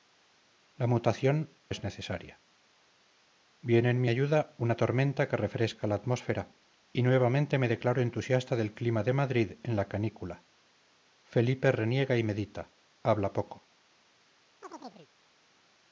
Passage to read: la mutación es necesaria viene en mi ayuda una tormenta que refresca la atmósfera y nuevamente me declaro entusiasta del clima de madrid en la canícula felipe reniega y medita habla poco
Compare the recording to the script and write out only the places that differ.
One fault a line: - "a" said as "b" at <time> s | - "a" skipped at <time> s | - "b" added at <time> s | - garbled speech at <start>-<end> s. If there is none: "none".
none